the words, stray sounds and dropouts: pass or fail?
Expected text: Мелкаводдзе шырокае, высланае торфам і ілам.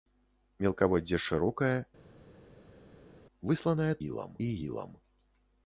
fail